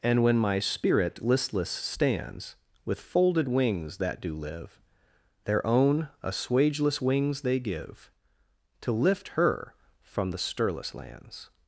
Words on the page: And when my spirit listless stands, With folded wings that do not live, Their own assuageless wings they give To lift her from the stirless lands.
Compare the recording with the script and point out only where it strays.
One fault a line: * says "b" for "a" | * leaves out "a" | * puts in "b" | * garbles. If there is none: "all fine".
* leaves out "not"